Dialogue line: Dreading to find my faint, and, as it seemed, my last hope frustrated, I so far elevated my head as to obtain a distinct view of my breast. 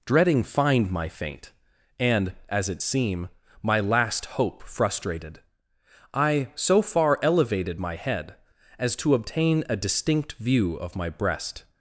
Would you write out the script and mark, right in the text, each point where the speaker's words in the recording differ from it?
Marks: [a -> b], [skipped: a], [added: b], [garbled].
Dreading [skipped: to] find my faint, and, as it [seemed, -> seem] my last hope frustrated, I so far elevated my head as to obtain a distinct view of my breast.